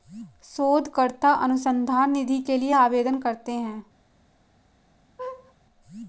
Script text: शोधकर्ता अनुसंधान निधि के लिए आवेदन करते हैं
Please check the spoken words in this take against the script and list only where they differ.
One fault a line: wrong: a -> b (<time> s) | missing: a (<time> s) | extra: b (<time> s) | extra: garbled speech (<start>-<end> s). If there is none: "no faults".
no faults